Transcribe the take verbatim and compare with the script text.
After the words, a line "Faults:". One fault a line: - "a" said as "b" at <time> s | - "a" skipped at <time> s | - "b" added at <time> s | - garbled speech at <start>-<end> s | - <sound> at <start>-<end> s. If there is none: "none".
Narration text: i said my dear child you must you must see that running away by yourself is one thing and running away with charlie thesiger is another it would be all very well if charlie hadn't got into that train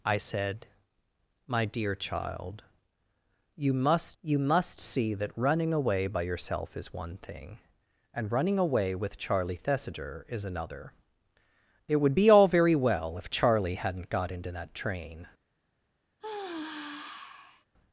i said my dear child you must you must see that running away by yourself is one thing and running away with charlie thesiger is another it would be all very well if charlie hadn't got into that train
Faults:
- sigh at 16.2-17.7 s